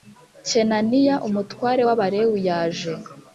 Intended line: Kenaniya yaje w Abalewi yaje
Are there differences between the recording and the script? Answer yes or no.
yes